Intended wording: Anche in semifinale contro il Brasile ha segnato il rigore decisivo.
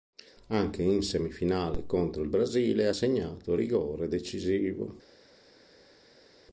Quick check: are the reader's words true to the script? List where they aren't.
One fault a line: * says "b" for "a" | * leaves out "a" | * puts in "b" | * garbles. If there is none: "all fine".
all fine